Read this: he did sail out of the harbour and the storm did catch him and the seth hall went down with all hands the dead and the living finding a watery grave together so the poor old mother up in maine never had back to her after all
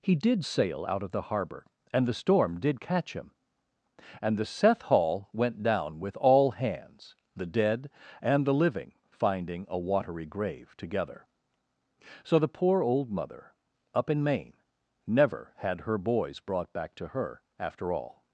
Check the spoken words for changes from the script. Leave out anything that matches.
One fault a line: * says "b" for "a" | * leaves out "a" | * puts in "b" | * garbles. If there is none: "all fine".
* puts in "her boys brought"